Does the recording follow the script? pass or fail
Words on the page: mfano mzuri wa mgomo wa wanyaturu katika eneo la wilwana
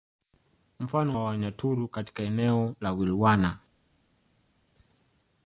fail